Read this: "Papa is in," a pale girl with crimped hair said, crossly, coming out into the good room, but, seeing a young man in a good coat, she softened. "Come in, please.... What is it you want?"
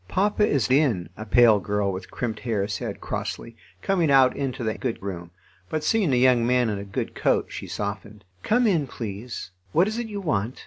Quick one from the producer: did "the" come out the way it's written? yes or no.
yes